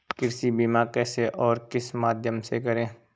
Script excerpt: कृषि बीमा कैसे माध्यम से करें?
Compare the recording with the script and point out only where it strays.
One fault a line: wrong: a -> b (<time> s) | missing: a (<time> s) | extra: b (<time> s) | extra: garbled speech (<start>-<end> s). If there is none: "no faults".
extra: और किस (1.3 s)